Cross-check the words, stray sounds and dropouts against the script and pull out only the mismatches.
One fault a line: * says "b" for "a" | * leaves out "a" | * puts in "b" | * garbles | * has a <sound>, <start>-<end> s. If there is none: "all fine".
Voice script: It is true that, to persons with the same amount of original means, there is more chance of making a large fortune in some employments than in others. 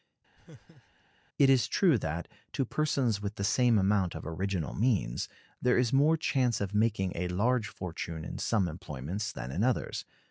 * has a laugh, 0.4-1.0 s